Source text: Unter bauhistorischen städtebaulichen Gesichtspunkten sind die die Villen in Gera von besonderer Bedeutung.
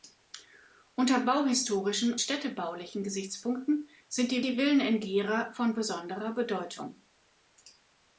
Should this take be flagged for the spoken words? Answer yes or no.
no